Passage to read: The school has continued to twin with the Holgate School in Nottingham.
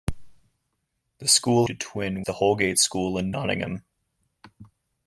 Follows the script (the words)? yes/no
no